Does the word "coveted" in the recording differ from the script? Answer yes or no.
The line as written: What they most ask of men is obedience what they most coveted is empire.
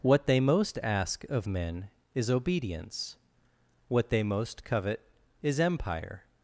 yes